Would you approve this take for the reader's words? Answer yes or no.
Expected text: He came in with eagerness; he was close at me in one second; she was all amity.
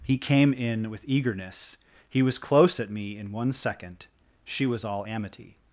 yes